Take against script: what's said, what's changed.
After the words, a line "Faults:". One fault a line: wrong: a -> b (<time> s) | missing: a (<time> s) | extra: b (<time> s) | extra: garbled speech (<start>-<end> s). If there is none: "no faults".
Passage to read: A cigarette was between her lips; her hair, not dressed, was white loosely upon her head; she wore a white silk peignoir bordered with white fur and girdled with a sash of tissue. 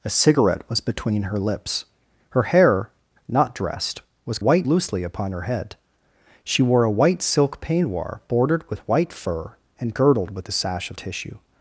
A cigarette was between her lips; her hair, not dressed, was white loosely upon her head; she wore a white silk peignoir bordered with white fur and girdled with a sash of tissue.
Faults:
no faults